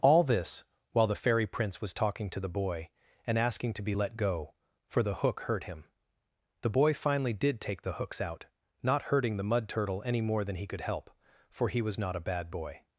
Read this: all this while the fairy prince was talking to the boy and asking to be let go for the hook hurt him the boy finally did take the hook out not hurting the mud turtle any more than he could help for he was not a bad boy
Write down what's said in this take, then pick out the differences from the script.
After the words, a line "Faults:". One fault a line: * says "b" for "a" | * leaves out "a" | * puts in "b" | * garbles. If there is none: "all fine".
all this while the fairy prince was talking to the boy and asking to be let go for the hook hurt him the boy finally did take the hooks out not hurting the mud turtle any more than he could help for he was not a bad boy
Faults:
* says "hooks" for "hook"